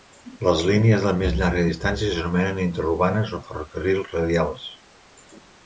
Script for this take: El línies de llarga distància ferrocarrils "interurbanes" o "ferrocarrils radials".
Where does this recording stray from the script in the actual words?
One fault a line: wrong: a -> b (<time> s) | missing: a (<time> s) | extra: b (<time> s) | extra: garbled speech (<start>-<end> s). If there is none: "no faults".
wrong: El -> Les (0.5 s)
extra: més (1.2 s)
wrong: ferrocarrils -> s'anomenen (2.1 s)